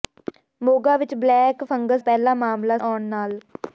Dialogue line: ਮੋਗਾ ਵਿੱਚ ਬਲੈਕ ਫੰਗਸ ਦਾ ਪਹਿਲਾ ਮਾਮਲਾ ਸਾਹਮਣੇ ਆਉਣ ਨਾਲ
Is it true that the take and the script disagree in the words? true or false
true